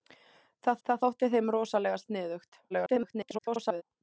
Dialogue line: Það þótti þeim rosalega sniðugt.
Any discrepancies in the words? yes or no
yes